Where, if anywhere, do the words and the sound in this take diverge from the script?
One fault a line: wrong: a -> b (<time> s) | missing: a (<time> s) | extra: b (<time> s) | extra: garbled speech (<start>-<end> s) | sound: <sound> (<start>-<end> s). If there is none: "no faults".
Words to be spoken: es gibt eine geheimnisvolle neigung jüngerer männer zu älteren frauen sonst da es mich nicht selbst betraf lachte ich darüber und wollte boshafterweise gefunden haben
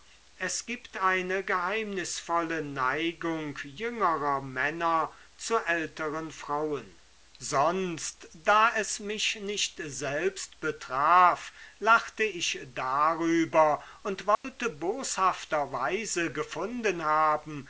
sound: dropout (14.3-14.4 s)